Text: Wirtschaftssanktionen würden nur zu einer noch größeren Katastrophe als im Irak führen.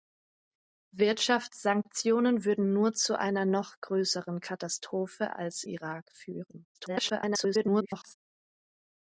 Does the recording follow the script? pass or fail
fail